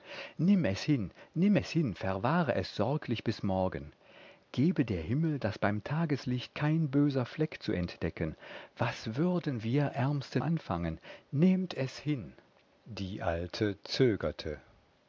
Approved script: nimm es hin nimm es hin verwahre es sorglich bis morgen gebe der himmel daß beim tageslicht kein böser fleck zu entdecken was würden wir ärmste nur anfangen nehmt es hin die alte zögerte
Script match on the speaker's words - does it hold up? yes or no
no